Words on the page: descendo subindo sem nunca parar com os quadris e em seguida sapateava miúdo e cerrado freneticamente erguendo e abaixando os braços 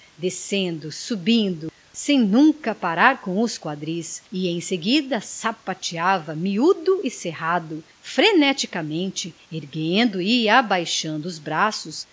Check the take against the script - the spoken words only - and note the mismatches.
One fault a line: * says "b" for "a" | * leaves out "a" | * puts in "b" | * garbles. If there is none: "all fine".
all fine